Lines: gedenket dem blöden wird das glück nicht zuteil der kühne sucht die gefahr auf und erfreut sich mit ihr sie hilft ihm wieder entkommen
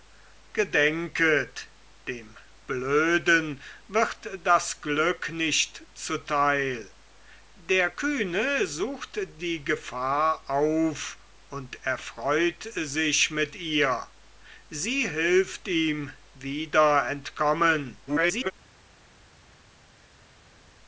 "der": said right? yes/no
yes